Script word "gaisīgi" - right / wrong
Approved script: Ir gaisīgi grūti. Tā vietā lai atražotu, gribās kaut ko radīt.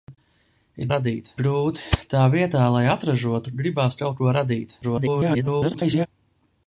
wrong